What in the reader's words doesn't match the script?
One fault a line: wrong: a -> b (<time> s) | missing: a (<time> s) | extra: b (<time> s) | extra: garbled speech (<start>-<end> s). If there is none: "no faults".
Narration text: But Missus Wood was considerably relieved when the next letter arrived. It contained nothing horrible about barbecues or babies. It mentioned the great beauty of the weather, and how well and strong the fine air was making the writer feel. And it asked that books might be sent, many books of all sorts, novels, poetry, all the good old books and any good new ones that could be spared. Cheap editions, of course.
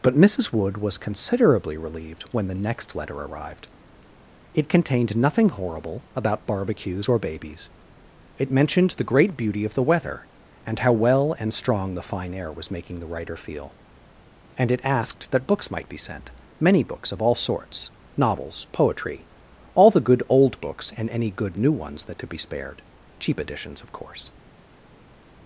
no faults